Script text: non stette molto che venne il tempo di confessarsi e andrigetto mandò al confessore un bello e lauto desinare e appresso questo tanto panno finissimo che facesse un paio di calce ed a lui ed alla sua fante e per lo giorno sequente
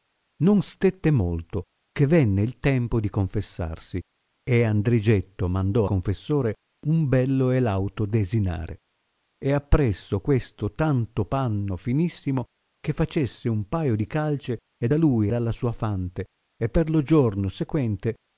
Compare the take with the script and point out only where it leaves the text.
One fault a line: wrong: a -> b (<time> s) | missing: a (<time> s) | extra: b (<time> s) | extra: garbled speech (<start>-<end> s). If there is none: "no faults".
missing: al (5.8 s)
missing: ed (15.3 s)